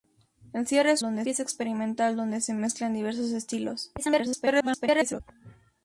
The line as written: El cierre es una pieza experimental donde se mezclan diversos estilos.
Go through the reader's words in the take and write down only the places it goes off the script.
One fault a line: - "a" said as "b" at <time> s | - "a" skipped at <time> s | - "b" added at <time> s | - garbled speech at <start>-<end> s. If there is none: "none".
- "una" said as "donde" at 1.0 s
- garbled speech at 4.0-5.2 s